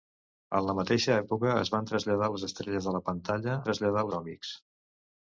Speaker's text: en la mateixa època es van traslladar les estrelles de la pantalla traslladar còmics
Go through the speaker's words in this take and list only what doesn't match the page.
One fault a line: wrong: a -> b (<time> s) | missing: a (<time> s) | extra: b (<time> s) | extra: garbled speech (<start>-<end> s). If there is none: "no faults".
no faults